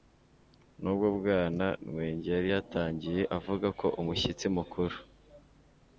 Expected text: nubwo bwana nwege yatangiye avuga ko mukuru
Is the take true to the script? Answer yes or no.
no